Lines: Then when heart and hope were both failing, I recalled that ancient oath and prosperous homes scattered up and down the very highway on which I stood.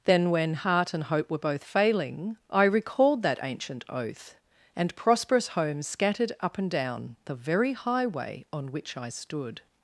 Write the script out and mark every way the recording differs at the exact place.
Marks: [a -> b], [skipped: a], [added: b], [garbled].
Then when heart and hope were both failing, I recalled that ancient oath and prosperous homes scattered up and down the very highway on which I stood.